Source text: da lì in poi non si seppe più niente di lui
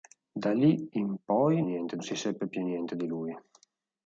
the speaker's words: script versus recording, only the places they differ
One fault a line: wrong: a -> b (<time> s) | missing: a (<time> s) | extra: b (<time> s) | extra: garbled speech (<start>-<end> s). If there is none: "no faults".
wrong: non -> niente (1.6 s)